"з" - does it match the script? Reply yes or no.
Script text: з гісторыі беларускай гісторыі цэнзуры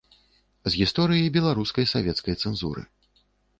yes